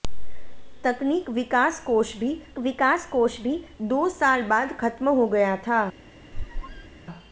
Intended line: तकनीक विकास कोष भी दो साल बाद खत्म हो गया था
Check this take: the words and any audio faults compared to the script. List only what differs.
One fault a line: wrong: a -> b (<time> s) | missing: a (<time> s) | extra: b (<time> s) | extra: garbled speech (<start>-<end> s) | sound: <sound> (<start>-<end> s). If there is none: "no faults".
extra: विकास कोष भी (2.6 s)
sound: squeak (6.3-7.0 s)